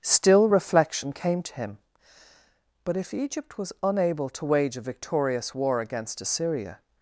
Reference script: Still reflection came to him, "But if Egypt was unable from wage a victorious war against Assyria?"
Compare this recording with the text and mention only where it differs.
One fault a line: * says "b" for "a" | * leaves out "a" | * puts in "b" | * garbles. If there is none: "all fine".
* says "to" for "from"